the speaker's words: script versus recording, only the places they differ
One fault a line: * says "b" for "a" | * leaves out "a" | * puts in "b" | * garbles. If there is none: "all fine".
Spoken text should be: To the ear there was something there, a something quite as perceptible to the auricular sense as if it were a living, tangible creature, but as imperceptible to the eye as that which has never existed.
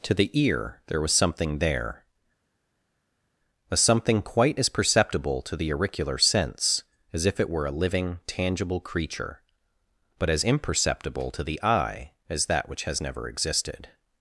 all fine